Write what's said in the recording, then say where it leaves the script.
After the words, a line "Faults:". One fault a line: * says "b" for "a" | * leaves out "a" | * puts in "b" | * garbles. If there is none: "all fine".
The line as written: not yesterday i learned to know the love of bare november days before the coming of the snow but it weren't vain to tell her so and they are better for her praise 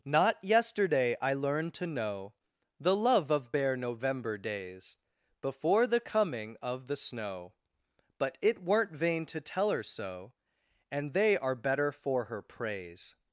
not yesterday i learned to know the love of bare november days before the coming of the snow but it weren't vain to tell her so and they are better for her praise
Faults:
all fine